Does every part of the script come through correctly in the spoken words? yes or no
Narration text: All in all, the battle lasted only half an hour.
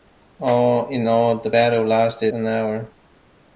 no